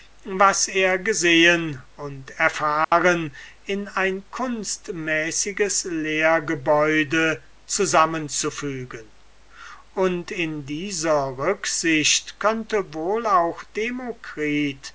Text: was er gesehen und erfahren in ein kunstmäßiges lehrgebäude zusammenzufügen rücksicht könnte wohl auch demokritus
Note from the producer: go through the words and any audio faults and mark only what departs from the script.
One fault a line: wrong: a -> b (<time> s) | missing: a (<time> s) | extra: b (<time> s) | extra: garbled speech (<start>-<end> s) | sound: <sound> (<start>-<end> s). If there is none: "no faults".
sound: dropout (2.8-2.9 s)
extra: und in dieser (9.9 s)